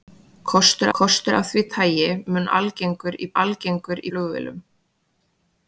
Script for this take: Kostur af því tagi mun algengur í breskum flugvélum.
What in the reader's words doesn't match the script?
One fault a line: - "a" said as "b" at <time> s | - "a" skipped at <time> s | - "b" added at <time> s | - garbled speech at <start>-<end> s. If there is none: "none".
- "kostur" added at 1.0 s
- "breskum" said as "algengur" at 3.4 s